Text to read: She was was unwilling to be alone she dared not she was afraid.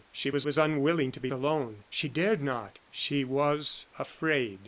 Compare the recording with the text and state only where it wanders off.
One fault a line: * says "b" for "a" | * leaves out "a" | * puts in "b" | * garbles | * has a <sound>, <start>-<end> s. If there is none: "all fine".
all fine